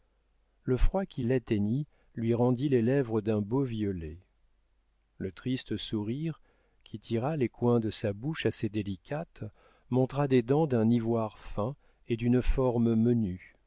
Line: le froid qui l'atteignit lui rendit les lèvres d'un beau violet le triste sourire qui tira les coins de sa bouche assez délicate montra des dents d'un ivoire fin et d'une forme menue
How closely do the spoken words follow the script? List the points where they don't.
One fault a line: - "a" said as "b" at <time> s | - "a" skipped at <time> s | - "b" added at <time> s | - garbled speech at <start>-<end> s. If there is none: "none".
none